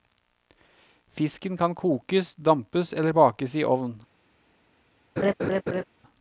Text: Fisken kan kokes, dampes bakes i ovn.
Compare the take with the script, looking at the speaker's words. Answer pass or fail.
fail